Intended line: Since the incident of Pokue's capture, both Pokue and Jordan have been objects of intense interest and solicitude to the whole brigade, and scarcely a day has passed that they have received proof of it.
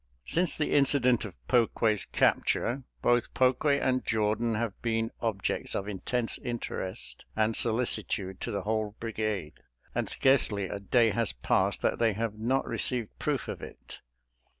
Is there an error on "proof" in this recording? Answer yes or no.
no